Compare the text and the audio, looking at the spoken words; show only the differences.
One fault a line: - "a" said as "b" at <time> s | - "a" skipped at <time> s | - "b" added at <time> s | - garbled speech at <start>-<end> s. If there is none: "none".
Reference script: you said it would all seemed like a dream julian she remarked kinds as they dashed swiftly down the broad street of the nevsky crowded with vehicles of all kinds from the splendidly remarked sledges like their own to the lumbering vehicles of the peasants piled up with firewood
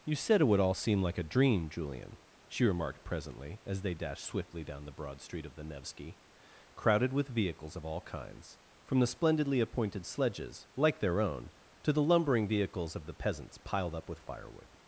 - "seemed" said as "seem" at 0.7 s
- "kinds" said as "presently" at 3.0 s
- "remarked" said as "appointed" at 9.6 s